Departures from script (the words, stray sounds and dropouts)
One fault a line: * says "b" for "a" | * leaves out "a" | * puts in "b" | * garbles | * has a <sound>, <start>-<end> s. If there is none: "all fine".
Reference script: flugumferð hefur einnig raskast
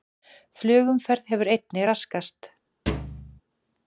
* has a thud, 2.9-3.4 s